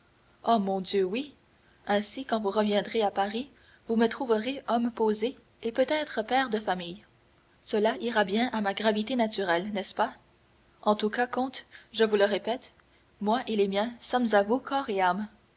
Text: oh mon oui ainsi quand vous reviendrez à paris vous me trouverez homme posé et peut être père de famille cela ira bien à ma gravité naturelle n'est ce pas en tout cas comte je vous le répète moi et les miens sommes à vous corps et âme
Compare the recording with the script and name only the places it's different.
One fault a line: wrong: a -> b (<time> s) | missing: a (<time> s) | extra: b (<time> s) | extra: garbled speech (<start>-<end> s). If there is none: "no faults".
extra: dieu (0.8 s)